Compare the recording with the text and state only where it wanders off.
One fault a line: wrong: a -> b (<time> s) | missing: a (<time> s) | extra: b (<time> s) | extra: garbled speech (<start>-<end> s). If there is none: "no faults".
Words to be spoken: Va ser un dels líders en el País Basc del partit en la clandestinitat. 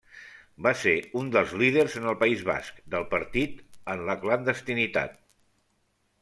no faults